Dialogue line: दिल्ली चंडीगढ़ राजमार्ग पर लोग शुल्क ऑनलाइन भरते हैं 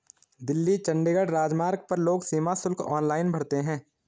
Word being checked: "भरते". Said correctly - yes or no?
yes